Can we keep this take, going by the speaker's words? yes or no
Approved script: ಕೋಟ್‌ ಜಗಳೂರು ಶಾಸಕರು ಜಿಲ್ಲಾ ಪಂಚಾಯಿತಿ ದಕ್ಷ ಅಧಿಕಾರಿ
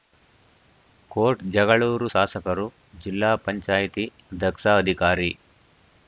yes